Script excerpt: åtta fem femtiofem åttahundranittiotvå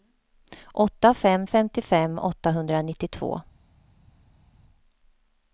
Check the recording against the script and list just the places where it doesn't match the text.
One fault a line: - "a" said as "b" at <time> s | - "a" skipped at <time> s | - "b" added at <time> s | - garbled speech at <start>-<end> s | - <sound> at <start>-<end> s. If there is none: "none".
none